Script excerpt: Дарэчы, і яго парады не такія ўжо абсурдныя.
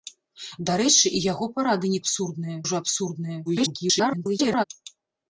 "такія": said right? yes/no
no